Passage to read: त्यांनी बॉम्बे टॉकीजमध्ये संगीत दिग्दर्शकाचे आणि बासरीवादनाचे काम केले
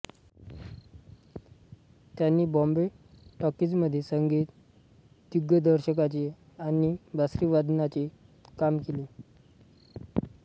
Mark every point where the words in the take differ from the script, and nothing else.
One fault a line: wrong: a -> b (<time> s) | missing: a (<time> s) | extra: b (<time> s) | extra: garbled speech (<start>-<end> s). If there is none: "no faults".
no faults